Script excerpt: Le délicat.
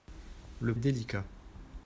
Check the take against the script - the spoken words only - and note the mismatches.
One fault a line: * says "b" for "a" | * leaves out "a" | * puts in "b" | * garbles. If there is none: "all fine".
all fine